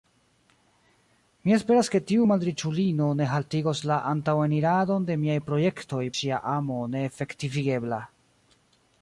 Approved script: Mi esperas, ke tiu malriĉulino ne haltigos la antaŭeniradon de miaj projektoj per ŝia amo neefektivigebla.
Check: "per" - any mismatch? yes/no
yes